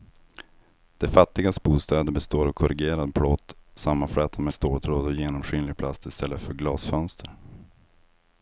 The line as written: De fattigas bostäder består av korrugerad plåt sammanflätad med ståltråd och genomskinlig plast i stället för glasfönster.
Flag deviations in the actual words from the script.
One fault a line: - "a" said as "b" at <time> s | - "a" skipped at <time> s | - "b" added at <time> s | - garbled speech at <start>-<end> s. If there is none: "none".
none